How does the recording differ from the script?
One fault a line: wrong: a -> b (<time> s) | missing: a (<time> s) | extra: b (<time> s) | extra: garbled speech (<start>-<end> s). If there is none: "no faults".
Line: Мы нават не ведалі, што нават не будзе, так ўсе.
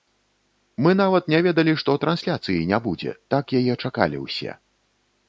wrong: нават -> трансляцыі (2.0 s)
extra: яе чакалі (3.6 s)